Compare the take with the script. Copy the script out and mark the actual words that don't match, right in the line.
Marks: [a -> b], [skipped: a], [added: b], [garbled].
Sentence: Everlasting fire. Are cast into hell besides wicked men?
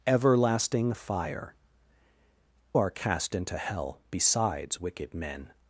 Everlasting fire. Are cast into hell besides wicked men?